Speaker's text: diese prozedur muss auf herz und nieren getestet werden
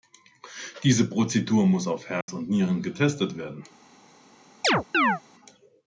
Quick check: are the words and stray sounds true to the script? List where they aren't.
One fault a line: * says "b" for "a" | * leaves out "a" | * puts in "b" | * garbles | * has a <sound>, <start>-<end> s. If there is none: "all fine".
* has a dropout, 2.2-2.3 s
* has a chirp, 4.6-5.2 s